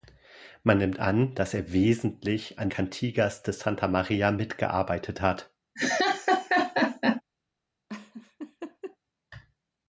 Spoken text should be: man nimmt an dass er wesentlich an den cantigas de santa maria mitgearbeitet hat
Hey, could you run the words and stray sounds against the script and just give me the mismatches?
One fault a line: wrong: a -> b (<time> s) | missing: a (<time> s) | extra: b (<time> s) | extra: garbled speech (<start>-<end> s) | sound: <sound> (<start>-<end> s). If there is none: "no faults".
missing: den (2.7 s)
sound: laugh (5.8-7.2 s)
sound: laugh (7.9-9.0 s)